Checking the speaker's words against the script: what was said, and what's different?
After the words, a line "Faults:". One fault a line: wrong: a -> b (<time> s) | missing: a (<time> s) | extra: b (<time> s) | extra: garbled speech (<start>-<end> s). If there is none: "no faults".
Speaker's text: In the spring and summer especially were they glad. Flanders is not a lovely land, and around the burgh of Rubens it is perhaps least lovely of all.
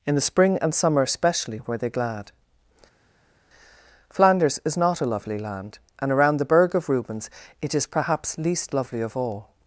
In the spring and summer especially were they glad. Flanders is not a lovely land, and around the burgh of Rubens it is perhaps least lovely of all.
Faults:
no faults